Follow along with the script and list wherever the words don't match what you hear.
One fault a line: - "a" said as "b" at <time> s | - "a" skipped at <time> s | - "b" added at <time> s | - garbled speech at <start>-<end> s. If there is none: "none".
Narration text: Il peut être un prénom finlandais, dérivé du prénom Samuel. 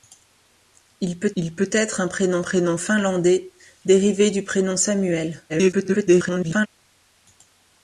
- "il peut" added at 1.3 s
- "prénom" added at 2.4 s
- garbled speech at 5.5-6.7 s